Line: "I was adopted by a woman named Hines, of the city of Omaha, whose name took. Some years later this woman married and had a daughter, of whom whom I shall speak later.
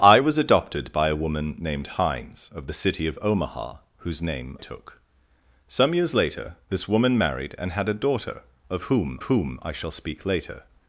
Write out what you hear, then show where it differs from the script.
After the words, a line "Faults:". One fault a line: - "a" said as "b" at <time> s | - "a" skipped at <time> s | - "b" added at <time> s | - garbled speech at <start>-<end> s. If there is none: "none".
"I was adopted by a woman named Hines, of the city of Omaha, whose name took. Some years later this woman married and had a daughter, of whom whom I shall speak later.
Faults:
none